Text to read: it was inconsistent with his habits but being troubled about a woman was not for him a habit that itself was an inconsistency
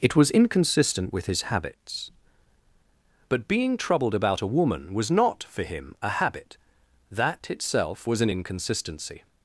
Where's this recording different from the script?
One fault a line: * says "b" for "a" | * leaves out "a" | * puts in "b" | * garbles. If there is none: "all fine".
all fine